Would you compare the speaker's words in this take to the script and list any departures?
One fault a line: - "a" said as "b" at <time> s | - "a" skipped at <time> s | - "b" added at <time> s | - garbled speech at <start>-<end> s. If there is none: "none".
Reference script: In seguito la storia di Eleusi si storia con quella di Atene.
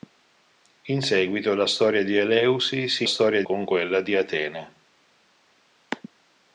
none